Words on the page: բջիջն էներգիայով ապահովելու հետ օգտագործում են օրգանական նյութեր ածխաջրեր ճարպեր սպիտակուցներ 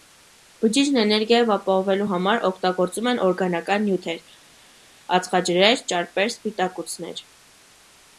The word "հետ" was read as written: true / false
false